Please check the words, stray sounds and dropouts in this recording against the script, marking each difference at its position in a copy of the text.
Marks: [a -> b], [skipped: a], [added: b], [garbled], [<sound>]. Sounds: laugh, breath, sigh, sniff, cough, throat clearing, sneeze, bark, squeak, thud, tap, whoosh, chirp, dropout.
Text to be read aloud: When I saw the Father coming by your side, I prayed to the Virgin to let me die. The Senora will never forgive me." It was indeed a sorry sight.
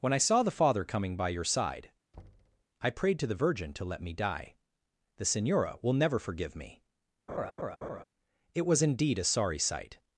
When I saw the Father coming by your side, [thud] I prayed to the Virgin to let me die. The Senora will never forgive me." [laugh] It was indeed a sorry sight.